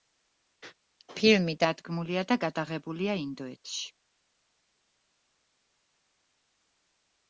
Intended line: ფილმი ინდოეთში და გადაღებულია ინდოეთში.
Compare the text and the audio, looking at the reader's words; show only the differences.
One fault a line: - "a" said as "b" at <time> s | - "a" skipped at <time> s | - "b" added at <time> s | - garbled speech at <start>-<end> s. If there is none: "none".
- "ინდოეთში" said as "დადგმულია" at 1.6 s